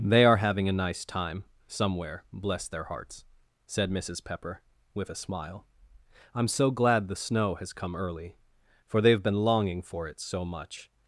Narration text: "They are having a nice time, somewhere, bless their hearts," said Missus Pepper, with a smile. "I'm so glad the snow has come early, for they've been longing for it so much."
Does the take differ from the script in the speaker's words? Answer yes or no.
no